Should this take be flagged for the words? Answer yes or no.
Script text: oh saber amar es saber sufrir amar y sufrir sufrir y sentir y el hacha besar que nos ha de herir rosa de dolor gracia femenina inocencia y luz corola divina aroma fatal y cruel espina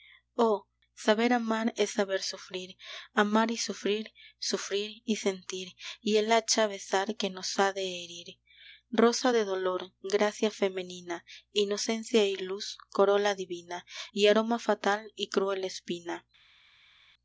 yes